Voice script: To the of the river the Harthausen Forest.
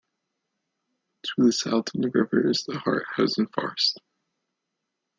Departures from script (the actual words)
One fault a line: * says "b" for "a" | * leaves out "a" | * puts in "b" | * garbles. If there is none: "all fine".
* puts in "south"
* puts in "is"